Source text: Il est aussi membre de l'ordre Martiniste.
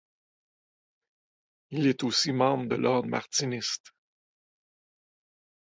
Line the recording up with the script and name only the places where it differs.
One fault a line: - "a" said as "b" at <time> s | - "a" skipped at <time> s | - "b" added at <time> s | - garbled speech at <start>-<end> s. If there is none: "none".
none